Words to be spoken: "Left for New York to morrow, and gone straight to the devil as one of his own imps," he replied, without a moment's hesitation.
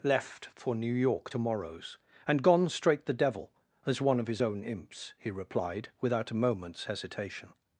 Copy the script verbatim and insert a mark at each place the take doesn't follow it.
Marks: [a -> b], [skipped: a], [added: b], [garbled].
"Left for New York to [morrow, -> morrows] and gone straight [skipped: to] the devil as one of his own imps," he replied, without a moment's hesitation.